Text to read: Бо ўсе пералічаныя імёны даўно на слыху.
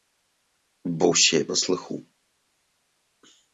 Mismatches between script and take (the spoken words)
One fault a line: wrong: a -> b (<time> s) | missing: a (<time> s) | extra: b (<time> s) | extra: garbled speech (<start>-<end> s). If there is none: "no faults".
missing: пералічаныя імёны даўно (1.4 s)